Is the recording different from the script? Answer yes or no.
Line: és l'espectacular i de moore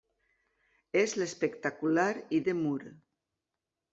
no